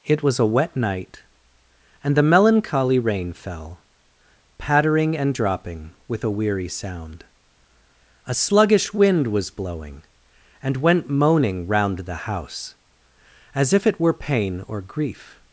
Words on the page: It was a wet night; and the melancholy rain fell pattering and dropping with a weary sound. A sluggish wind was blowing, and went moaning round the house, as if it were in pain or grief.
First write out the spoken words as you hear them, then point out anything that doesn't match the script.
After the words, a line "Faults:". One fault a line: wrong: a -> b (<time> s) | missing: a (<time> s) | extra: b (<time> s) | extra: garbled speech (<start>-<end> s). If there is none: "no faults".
It was a wet night; and the melancholy rain fell pattering and dropping with a weary sound. A sluggish wind was blowing, and went moaning round the house, as if it were pain or grief.
Faults:
missing: in (14.1 s)